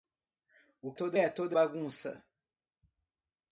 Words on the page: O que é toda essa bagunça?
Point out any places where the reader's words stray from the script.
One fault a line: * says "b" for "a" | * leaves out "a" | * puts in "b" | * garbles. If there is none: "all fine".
* says "toda" for "que"
* leaves out "essa"